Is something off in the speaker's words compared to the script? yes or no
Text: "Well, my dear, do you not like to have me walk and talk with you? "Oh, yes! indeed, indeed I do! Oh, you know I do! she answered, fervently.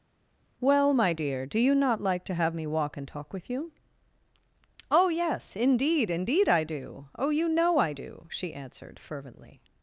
no